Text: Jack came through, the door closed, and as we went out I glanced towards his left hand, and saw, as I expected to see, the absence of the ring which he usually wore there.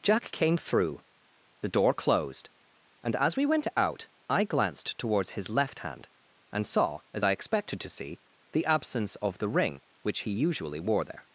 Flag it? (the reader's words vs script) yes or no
no